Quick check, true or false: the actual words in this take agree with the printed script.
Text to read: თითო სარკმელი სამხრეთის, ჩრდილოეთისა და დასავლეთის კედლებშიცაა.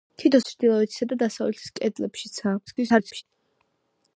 false